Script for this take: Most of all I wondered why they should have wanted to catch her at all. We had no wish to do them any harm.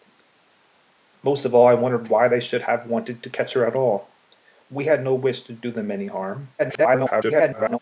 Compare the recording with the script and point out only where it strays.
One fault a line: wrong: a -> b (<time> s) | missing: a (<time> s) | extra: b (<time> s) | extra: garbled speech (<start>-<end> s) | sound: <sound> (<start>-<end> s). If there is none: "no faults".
extra: garbled speech (6.6-7.8 s)